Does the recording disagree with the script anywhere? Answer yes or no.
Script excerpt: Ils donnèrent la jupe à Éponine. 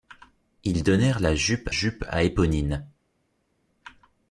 yes